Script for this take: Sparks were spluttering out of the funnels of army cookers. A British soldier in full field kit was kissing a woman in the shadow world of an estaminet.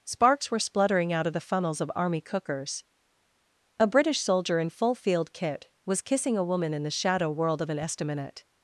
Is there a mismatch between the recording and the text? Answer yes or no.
no